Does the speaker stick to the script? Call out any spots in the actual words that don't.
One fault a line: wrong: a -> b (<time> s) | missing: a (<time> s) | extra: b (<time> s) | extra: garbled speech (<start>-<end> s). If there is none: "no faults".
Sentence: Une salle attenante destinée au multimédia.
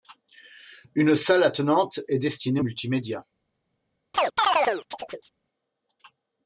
extra: est (2.1 s)